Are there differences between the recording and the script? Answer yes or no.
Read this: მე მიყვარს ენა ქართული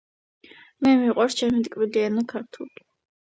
yes